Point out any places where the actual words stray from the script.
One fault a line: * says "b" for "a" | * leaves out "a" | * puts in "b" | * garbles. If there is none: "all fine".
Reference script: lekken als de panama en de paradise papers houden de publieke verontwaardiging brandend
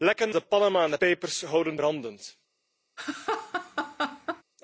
* leaves out "als"
* leaves out "paradise"
* leaves out "de publieke verontwaardiging"